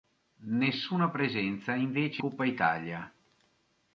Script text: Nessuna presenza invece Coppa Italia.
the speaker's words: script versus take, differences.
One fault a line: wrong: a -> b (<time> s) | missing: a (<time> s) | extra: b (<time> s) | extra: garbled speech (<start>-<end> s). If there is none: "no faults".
no faults